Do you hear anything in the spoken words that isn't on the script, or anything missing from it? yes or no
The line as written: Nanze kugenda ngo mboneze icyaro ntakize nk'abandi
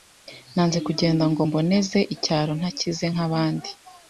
no